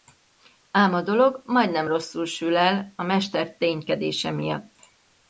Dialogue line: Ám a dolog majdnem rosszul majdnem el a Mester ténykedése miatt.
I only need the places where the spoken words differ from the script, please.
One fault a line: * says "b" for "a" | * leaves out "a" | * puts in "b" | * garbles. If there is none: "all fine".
* says "sül" for "majdnem"